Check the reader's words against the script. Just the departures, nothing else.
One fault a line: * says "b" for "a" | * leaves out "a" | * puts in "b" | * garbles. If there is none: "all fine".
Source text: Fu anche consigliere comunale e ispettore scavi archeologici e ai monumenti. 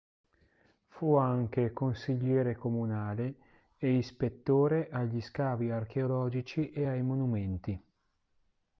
* puts in "agli"